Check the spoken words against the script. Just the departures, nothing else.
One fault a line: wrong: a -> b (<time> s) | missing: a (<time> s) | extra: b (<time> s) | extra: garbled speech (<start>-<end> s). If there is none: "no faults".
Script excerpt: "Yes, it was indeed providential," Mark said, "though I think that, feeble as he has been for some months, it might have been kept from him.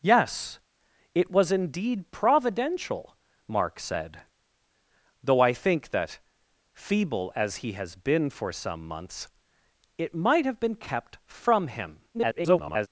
extra: garbled speech (12.1-12.9 s)